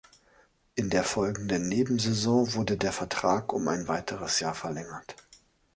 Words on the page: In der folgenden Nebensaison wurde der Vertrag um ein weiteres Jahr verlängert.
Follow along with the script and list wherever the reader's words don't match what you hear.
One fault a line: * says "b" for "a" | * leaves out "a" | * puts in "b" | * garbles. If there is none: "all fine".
all fine